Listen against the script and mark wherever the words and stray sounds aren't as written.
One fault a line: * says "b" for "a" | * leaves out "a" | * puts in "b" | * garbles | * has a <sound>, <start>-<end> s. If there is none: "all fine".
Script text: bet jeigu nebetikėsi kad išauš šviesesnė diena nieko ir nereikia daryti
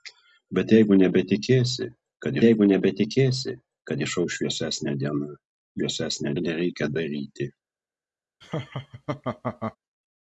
* puts in "jeigu nebetikėsi kad"
* says "šviesesnė" for "nieko"
* has a laugh, 8.4-9.8 s